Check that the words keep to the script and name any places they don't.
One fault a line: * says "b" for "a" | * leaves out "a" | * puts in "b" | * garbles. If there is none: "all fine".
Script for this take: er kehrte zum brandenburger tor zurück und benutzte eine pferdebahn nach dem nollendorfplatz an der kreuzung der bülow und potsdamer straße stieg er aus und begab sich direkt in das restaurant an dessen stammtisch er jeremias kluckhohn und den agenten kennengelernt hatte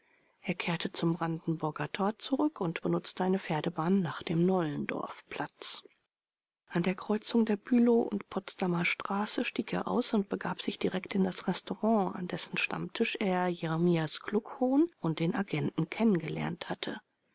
all fine